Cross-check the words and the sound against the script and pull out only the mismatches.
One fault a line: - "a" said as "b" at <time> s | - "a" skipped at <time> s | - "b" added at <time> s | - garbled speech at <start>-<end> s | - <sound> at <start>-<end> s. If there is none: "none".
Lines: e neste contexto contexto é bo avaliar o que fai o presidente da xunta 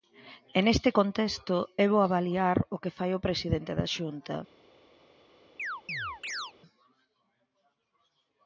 - "contexto" skipped at 1.6 s
- chirp at 5.6-6.5 s